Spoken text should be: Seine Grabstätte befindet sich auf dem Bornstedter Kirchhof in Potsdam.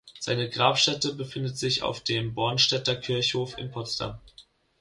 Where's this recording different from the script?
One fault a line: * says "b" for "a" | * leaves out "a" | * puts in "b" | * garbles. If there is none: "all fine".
all fine